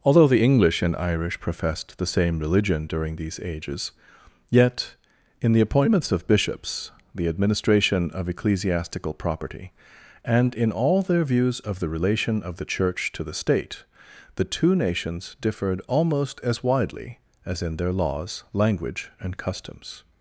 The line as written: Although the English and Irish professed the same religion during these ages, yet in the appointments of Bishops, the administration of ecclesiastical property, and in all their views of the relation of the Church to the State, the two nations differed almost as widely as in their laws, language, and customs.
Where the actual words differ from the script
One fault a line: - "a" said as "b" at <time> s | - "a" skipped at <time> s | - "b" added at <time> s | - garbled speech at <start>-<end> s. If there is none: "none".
none